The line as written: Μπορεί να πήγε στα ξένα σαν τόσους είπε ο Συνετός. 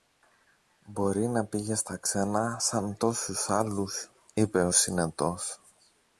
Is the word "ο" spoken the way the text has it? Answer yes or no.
yes